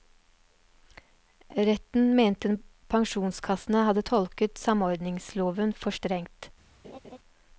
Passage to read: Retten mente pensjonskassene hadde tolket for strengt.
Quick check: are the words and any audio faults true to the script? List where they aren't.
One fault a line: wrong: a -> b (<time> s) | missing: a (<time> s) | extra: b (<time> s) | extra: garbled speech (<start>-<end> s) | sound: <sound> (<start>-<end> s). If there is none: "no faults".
extra: samordningsloven (4.6 s)
sound: laugh (6.8-7.2 s)